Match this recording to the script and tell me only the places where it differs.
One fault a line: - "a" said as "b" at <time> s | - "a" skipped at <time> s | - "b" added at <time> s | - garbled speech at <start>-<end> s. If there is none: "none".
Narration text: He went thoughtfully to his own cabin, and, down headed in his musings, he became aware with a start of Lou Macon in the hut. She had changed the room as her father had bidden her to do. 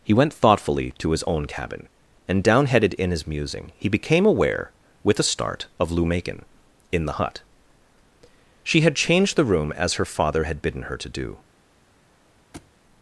- "musings" said as "musing" at 3.3 s